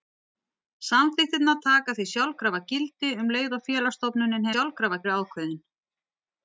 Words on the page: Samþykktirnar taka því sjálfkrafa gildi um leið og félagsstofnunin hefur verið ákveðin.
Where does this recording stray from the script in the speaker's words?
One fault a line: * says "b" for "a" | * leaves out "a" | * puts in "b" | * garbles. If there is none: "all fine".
* says "sjálfkrafa" for "hefur"